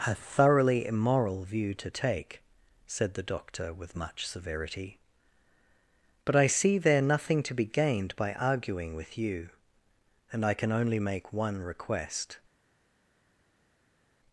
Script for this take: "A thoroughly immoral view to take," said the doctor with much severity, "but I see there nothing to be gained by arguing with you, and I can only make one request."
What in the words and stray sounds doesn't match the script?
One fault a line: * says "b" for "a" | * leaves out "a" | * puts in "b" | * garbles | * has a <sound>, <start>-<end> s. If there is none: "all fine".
all fine